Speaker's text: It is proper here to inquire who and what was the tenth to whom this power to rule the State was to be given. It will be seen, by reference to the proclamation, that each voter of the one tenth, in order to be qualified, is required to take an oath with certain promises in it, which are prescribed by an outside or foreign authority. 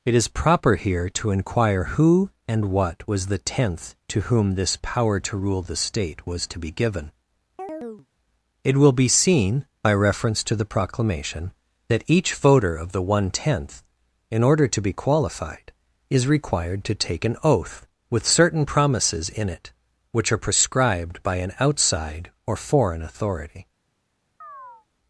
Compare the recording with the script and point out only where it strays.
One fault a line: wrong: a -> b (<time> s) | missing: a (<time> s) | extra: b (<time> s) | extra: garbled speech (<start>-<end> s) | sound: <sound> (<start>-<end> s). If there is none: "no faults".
sound: chirp (7.6-8.1 s)
sound: chirp (24.4-24.9 s)